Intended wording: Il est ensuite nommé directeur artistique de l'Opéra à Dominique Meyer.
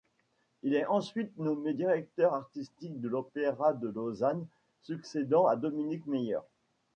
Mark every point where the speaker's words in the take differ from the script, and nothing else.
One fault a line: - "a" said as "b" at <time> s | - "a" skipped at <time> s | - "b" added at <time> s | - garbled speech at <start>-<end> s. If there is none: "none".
- "de Lausanne succédant" added at 3.7 s